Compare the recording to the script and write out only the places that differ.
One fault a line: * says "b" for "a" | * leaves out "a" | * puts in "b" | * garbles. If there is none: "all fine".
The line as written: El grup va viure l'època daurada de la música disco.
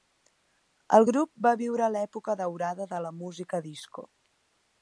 all fine